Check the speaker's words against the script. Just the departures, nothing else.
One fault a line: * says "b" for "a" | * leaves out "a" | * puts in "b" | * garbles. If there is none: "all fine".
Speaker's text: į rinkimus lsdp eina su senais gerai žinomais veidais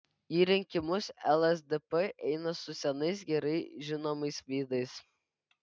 all fine